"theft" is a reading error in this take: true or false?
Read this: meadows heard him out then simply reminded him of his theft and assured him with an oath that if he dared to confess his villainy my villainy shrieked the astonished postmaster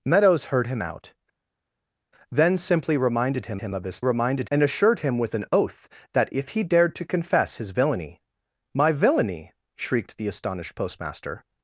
true